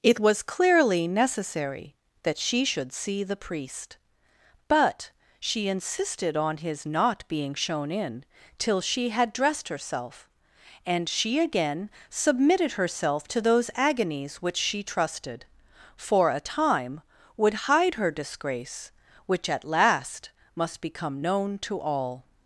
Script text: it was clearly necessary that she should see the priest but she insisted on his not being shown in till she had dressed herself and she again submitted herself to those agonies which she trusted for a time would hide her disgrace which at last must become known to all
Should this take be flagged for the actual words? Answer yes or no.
no